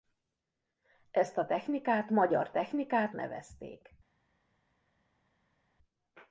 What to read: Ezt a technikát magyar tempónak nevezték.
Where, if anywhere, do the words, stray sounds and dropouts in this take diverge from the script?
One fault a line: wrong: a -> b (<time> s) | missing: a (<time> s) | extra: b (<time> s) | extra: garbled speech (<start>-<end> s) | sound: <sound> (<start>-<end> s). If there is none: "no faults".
wrong: tempónak -> technikát (2.5 s)